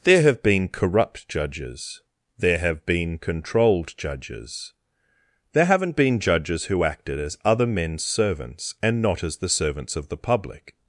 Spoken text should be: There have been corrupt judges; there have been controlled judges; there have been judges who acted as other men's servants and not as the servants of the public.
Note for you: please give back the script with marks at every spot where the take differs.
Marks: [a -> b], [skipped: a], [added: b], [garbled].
There have been corrupt judges; there have been controlled judges; there [have -> haven't] been judges who acted as other men's servants and not as the servants of the public.